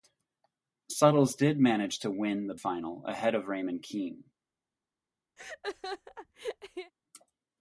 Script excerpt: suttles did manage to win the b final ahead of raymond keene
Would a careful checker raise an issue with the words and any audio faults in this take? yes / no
yes